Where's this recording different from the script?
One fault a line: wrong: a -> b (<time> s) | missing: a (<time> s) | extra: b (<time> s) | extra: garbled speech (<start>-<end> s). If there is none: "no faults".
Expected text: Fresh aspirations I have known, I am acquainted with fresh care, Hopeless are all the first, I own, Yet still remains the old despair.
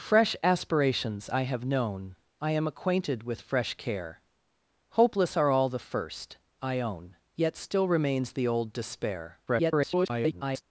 extra: garbled speech (9.5-10.6 s)